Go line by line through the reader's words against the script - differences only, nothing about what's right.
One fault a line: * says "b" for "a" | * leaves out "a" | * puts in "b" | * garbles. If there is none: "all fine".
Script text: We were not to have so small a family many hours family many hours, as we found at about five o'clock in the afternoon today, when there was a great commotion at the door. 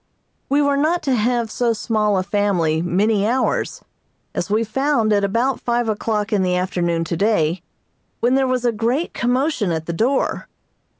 * leaves out "family many hours"